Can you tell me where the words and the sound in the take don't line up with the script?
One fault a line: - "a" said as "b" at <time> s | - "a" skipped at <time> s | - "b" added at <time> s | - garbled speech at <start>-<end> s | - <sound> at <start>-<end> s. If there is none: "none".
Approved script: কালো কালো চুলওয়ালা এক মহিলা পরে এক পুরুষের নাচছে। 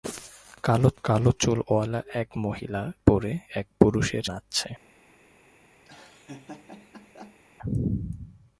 - laugh at 5.9-7.4 s